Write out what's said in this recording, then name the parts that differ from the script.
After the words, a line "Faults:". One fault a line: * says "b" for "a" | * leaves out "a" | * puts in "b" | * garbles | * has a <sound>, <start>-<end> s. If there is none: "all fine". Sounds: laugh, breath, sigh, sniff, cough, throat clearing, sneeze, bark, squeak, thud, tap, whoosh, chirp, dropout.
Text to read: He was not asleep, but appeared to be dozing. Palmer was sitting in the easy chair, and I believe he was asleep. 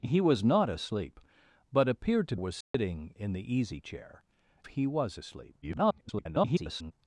He was not asleep, but appeared to was sitting in the easy chair, he was asleep. [garbled]
Faults:
* leaves out "be dozing Palmer"
* has a dropout, 2.6-2.7 s
* leaves out "and I believe"
* garbles